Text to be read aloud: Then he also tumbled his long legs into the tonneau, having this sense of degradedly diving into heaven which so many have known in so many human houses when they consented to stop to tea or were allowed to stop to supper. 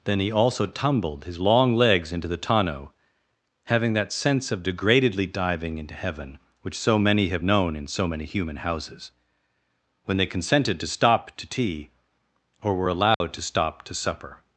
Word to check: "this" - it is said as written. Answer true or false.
false